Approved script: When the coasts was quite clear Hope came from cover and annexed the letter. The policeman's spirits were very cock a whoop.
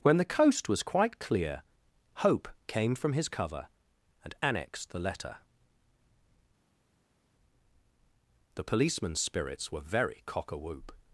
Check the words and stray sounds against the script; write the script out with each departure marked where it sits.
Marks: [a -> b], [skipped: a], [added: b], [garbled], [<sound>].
When the [coasts -> coast] was quite clear Hope came from [added: his] cover and annexed the letter. The policeman's spirits were very cock a whoop.